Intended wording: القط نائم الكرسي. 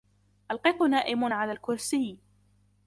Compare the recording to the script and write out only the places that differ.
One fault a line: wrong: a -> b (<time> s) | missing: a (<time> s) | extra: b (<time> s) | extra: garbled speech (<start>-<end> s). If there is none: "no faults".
extra: على (1.3 s)